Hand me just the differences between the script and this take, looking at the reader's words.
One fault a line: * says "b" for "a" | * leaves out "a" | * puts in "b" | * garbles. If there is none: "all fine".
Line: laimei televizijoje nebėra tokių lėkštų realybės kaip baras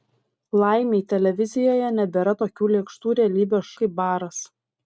all fine